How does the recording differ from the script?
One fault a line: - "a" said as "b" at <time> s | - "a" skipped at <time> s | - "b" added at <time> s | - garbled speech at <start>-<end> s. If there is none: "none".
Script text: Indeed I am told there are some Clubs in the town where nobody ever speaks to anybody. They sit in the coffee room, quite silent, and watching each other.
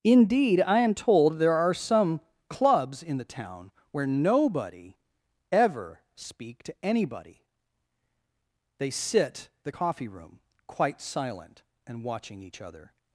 - "speaks" said as "speak" at 6.2 s
- "in" skipped at 9.5 s